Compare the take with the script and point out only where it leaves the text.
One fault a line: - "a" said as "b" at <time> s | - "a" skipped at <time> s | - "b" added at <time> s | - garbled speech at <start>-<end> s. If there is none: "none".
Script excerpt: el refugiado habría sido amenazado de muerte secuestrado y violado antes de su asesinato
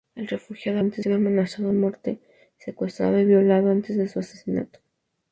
- "habría" said as "antes" at 0.8 s
- "de" skipped at 1.7 s